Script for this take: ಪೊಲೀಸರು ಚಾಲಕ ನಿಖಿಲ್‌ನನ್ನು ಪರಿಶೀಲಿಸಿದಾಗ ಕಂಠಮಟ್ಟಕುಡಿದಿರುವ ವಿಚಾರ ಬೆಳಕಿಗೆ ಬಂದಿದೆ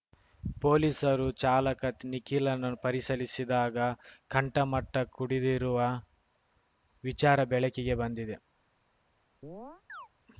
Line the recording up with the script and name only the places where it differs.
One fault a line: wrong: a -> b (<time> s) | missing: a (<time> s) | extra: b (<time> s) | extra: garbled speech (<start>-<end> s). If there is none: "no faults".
no faults